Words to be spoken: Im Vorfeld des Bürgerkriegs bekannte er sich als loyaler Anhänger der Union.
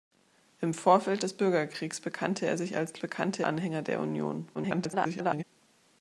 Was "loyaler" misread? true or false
true